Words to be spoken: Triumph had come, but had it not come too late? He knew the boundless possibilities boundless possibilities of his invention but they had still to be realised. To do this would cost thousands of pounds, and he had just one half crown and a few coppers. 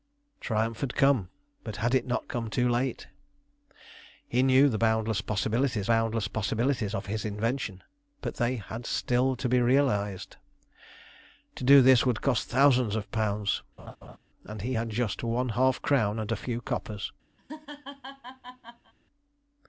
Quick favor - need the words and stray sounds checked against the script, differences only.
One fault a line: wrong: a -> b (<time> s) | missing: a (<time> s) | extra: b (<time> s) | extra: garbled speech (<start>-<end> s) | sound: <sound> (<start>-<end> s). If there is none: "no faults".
sound: laugh (13.8-14.2 s)
sound: laugh (17.4-18.9 s)